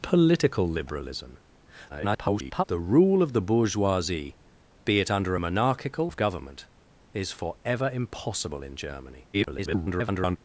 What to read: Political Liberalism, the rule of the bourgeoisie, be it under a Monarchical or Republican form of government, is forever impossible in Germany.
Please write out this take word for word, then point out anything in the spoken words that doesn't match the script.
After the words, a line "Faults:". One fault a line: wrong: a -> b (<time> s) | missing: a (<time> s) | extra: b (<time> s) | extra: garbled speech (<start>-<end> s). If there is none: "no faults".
Political Liberalism, [garbled] the rule of the bourgeoisie, be it under a Monarchical of government, is forever impossible in Germany. [garbled]
Faults:
extra: garbled speech (1.9-2.6 s)
missing: or Republican form (6.1 s)
extra: garbled speech (9.3-10.4 s)